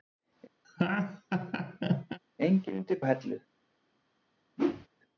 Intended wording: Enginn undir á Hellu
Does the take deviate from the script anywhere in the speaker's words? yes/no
no